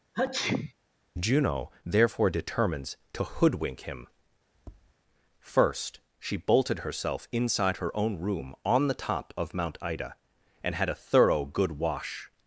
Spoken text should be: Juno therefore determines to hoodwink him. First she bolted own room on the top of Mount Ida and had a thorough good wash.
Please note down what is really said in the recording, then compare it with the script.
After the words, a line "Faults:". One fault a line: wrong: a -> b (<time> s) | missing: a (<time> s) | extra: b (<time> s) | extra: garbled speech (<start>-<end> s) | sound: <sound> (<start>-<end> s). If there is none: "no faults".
Juno therefore determines to hoodwink him. First she bolted herself inside her own room on the top of Mount Ida and had a thorough good wash.
Faults:
sound: sneeze (0.1-0.7 s)
sound: tap (4.5-4.9 s)
extra: herself inside her (6.8 s)